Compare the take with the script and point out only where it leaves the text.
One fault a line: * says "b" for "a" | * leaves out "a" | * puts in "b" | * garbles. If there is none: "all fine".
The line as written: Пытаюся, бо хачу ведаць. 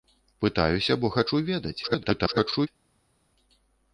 * garbles